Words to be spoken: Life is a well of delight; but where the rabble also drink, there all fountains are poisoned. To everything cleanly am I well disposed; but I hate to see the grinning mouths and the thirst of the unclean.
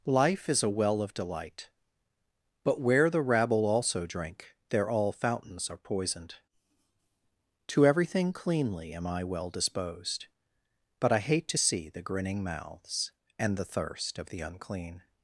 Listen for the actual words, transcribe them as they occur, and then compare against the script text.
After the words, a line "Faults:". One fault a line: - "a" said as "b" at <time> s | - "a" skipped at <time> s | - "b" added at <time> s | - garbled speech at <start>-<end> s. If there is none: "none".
Life is a well of delight; but where the rabble also drink, there all fountains are poisoned. To everything cleanly am I well disposed; but I hate to see the grinning mouths and the thirst of the unclean.
Faults:
none